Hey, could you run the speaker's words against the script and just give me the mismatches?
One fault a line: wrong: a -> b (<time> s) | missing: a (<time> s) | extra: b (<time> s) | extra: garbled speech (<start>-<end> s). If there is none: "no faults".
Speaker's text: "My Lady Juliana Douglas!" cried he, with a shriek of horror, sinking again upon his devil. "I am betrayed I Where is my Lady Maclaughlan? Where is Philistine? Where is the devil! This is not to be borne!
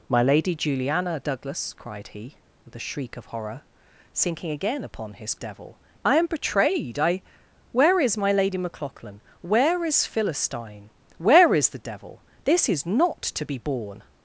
no faults